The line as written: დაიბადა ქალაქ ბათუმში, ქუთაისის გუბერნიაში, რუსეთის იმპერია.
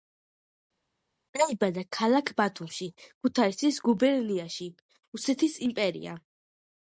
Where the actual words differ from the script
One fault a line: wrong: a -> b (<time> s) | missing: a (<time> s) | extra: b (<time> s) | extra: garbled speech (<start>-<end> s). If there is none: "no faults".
no faults